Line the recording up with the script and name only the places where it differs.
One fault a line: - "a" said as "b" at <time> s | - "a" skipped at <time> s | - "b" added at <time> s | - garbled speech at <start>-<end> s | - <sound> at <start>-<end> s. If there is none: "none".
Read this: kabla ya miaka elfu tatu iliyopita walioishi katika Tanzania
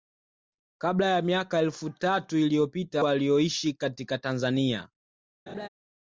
- laugh at 5.5-5.7 s